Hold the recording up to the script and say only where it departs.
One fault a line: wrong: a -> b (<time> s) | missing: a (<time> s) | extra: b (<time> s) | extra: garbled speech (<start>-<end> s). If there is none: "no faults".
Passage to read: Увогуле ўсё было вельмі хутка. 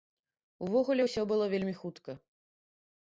no faults